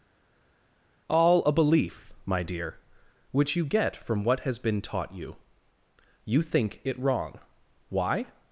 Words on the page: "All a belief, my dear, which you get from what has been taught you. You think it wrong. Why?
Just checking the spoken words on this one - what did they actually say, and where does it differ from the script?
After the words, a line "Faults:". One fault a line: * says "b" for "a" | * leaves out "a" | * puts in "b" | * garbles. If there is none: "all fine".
"All a belief, my dear, which you get from what has been taught you. You think it wrong. Why?
Faults:
all fine